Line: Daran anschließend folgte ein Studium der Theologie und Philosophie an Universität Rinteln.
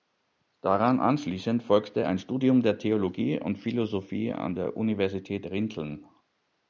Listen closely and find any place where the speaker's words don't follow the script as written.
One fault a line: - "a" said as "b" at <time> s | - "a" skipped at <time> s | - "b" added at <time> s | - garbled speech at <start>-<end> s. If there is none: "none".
- "der" added at 4.5 s